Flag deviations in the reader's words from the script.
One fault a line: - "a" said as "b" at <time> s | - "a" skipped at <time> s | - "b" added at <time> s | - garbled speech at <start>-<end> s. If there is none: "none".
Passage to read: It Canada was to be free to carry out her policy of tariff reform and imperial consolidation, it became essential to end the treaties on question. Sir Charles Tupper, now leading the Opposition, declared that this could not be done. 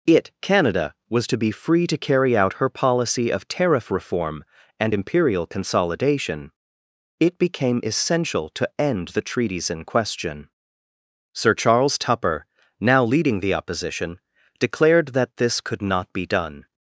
- "on" said as "in" at 9.7 s